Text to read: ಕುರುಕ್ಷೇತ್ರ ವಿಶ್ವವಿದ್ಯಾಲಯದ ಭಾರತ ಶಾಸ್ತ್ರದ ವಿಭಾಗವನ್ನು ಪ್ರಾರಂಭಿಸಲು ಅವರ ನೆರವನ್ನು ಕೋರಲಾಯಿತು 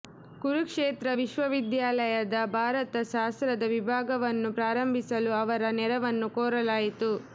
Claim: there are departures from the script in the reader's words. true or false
false